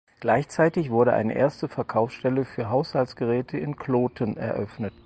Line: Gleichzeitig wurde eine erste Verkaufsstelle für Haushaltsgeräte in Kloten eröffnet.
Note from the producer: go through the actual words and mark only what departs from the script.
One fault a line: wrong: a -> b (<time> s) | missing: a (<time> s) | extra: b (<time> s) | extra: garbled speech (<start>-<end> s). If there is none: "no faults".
no faults